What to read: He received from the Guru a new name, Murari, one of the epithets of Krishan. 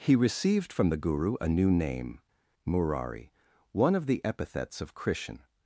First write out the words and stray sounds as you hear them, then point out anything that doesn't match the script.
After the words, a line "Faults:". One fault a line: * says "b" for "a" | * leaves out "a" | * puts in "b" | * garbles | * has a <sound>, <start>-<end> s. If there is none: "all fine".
He received from the Guru a new name, Murari, one of the epithets of Krishan.
Faults:
all fine